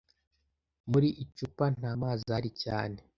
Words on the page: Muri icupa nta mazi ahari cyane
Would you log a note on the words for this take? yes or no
no